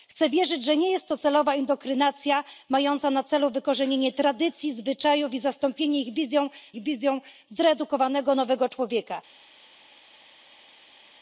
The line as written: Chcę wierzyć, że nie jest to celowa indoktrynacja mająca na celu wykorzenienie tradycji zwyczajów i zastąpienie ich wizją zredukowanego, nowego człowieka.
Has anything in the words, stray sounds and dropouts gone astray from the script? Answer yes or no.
yes